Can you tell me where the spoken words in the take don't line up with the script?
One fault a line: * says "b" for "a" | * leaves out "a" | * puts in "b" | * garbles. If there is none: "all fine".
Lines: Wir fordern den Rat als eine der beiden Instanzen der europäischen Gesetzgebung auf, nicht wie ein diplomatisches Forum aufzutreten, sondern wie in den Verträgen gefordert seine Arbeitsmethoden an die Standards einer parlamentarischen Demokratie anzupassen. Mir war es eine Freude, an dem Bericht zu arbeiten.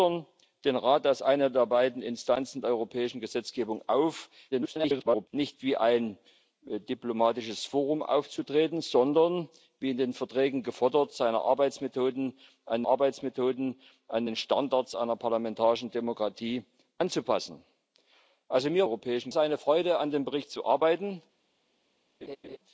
* garbles
* puts in "Arbeitsmethoden an"
* says "europäischen" for "war"